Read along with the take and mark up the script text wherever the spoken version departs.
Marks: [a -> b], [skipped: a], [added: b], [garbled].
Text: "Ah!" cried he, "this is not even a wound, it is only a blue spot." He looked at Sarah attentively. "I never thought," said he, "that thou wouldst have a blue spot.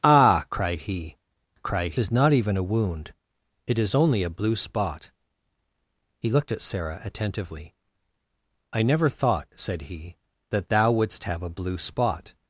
"Ah!" cried he, ["this -> cried] is not even a wound, it is only a blue spot." He looked at Sarah attentively. "I never thought," said he, "that thou wouldst have a blue spot.